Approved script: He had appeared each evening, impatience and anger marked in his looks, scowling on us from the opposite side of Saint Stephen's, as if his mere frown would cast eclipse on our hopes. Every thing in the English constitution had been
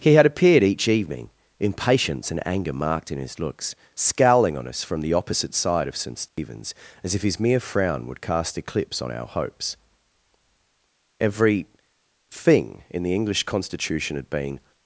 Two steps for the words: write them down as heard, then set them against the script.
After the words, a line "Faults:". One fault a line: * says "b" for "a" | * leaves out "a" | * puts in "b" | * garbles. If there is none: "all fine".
He had appeared each evening, impatience and anger marked in his looks, scowling on us from the opposite side of Saint Stephen's, as if his mere frown would cast eclipse on our hopes. Every thing in the English constitution had been
Faults:
all fine